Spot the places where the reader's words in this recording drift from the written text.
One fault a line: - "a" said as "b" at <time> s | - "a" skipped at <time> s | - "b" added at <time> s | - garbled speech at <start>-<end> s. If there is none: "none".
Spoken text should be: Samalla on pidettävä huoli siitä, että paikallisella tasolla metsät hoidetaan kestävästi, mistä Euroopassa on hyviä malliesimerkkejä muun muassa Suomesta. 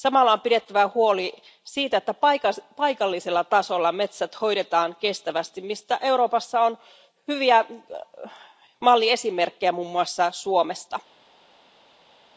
none